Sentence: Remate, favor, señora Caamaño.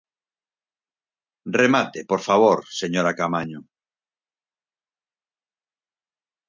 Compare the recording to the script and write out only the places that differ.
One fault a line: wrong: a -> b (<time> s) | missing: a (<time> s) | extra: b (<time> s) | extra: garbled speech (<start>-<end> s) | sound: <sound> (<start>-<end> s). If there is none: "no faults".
extra: por (2.1 s)